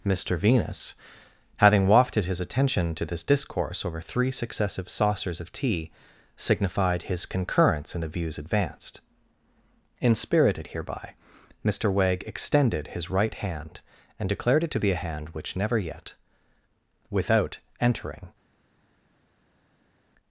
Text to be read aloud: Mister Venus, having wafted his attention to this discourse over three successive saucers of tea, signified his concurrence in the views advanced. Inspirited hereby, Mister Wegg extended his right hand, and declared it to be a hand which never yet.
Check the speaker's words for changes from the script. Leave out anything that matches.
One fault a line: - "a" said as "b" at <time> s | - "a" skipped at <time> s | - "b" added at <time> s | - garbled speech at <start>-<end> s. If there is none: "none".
- "Without entering" added at 17.1 s